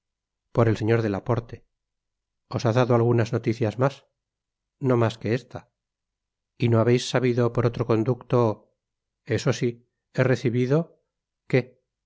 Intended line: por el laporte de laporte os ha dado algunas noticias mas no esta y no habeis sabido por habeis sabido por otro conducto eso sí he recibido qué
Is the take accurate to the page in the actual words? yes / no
no